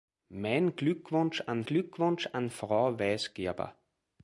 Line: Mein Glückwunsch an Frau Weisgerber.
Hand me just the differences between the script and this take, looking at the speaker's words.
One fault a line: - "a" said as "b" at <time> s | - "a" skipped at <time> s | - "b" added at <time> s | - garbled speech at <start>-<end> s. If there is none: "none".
- "Glückwunsch an" added at 1.7 s